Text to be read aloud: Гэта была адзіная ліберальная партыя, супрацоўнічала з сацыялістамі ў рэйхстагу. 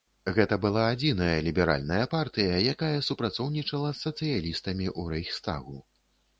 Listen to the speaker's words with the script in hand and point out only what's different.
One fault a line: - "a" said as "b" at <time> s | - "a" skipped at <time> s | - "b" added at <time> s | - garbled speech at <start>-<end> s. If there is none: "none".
- "якая" added at 2.7 s